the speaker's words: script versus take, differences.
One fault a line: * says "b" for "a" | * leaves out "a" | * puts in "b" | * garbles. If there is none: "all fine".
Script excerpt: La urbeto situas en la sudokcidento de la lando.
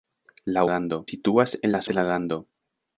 * says "lando" for "urbeto"
* leaves out "sudokcidento"